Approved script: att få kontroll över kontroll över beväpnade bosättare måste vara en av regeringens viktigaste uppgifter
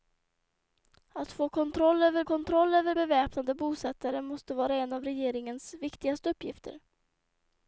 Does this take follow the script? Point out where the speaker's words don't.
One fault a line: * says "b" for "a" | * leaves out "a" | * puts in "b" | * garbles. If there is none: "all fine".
all fine